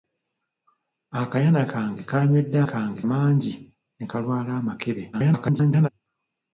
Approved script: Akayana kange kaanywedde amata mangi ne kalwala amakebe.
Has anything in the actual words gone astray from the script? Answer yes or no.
yes